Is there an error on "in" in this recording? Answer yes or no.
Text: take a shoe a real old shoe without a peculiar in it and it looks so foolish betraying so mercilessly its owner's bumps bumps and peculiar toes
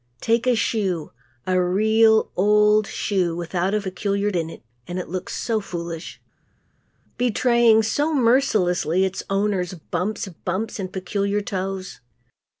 no